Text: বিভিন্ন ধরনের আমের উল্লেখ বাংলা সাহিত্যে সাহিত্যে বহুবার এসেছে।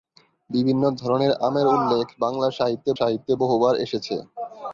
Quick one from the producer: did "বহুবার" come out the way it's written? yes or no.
yes